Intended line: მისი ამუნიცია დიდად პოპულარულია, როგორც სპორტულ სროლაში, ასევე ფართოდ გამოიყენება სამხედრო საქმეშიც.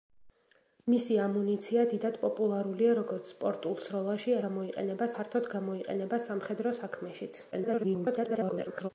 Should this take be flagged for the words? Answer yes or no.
yes